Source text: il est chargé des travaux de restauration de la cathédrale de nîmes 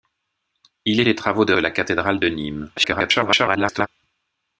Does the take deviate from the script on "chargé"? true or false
true